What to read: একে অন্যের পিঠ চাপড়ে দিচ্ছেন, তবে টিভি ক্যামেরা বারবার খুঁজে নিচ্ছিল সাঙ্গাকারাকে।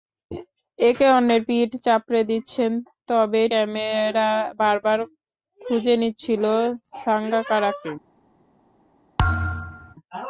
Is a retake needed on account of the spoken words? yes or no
yes